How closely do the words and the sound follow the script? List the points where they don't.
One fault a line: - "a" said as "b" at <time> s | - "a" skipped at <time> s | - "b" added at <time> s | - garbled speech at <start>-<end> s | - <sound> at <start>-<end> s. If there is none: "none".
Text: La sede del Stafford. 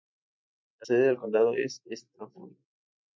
- "condado es" added at 1.1 s